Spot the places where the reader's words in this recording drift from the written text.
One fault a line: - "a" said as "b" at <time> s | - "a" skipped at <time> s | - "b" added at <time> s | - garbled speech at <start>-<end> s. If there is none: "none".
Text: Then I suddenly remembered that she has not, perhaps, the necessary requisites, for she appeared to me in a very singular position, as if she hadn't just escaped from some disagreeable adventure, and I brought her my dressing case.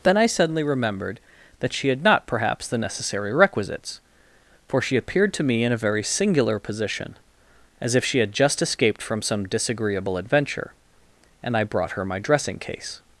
- "has" said as "had" at 1.9 s
- "hadn't" said as "had" at 8.2 s